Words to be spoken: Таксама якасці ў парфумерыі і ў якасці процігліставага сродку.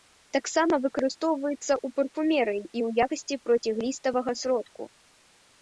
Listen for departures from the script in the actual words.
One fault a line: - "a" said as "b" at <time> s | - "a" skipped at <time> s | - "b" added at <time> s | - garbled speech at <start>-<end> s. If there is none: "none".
- "якасці" said as "выкарыстоўваецца" at 0.8 s